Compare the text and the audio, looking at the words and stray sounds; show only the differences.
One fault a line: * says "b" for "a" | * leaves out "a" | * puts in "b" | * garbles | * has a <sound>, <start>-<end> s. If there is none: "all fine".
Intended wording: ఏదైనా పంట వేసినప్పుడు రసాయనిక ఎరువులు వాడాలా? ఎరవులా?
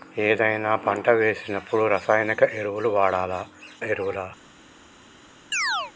* has a chirp, 5.5-5.9 s